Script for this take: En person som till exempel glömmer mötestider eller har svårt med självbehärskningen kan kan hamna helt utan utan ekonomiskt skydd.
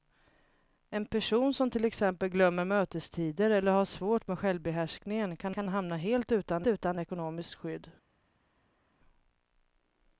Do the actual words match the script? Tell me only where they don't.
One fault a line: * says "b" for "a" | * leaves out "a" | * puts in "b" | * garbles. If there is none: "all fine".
all fine